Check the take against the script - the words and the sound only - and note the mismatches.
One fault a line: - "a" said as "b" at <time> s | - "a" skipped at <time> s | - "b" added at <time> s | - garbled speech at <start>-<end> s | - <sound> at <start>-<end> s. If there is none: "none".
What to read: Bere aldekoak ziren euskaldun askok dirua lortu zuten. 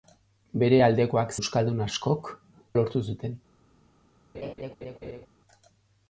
- "ziren" skipped at 1.3 s
- "dirua" skipped at 2.3 s
- laugh at 4.3-5.3 s